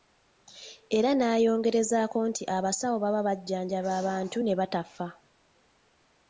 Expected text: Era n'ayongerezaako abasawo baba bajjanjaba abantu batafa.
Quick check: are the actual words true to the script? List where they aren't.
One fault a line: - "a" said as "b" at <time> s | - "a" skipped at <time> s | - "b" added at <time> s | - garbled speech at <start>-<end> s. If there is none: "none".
- "nti" added at 2.3 s
- "ne" added at 4.4 s